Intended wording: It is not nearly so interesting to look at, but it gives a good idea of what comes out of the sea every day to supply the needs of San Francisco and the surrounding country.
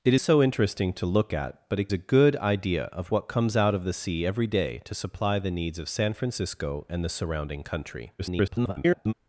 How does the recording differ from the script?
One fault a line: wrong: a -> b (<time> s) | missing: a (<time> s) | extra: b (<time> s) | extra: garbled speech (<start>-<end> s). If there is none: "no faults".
missing: is not nearly (0.1 s)
missing: gives (1.9 s)
extra: garbled speech (8.2-9.1 s)